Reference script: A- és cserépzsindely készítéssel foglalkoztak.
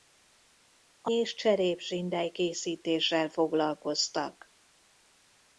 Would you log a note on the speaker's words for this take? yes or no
no